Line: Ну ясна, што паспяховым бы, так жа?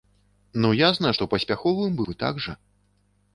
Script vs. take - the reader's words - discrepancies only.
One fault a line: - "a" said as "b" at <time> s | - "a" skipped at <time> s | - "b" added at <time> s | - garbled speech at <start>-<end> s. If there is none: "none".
none